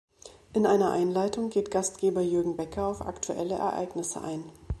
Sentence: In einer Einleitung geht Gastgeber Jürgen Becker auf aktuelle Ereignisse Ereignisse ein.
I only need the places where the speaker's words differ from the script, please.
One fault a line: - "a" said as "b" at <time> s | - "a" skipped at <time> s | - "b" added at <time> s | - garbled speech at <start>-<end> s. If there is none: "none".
- "Ereignisse" skipped at 4.2 s